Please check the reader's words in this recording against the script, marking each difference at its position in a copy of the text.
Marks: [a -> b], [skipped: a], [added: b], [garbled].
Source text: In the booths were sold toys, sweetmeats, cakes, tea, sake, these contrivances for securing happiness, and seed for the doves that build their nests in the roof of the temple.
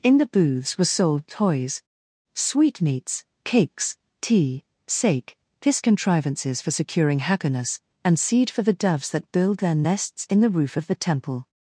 In the booths were sold toys, sweetmeats, cakes, tea, sake, [these -> this] contrivances for securing happiness, and seed for the doves that build their nests in the roof of the temple.